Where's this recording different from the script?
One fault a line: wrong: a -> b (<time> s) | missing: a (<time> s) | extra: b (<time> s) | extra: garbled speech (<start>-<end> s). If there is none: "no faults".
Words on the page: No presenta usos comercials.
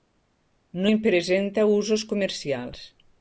extra: en (0.9 s)